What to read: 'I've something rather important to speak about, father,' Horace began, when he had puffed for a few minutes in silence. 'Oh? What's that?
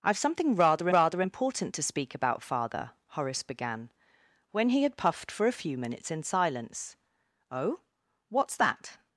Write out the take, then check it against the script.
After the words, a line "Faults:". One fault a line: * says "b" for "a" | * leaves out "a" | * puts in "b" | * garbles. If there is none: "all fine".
'I've something rather rather important to speak about, father,' Horace began, when he had puffed for a few minutes in silence. 'Oh? What's that?
Faults:
* puts in "rather"